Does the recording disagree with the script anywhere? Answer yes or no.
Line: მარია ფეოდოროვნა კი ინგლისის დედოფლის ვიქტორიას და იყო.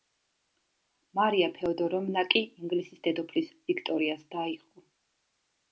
no